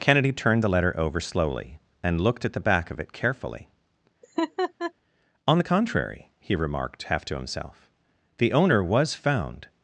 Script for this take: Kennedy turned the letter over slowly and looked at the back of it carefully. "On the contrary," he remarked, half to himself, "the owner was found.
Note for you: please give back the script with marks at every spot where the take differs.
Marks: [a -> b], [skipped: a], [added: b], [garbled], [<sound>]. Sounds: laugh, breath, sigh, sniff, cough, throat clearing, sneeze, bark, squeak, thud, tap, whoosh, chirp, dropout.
Kennedy turned the letter over slowly and looked at the back of it carefully. [laugh] "On the contrary," he remarked, half to himself, "the owner was found.